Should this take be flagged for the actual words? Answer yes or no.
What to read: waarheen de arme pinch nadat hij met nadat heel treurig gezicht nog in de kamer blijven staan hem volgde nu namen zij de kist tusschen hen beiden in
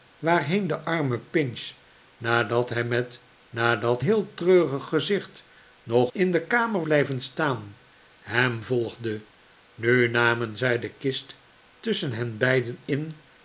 no